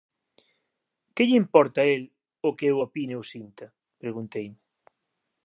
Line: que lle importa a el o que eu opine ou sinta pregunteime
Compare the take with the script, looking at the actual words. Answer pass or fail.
pass